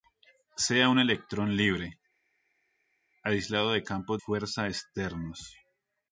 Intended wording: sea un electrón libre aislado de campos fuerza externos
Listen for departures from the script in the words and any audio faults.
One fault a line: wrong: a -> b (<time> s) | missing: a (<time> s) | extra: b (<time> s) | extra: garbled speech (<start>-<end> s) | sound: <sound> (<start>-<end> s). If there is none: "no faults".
no faults